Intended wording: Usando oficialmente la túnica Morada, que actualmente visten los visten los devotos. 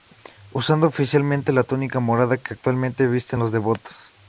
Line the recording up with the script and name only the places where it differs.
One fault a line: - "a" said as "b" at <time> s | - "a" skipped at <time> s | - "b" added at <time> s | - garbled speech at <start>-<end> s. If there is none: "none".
- "visten los" skipped at 3.5 s